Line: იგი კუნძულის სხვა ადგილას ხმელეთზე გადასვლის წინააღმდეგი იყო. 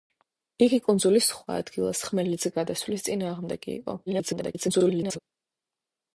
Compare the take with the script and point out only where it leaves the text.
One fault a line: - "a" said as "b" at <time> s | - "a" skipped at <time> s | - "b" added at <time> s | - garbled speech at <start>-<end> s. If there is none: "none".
- garbled speech at 4.1-5.2 s